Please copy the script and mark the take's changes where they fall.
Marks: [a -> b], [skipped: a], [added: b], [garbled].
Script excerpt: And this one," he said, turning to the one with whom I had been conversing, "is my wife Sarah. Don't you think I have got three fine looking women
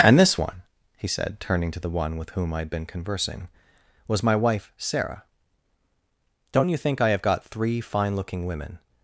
And this one," he said, turning to the one with whom I had been conversing, ["is -> was] my wife Sarah. Don't you think I have got three fine looking women